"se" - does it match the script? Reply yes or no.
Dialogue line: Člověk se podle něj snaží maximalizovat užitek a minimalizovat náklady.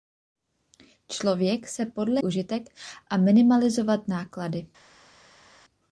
yes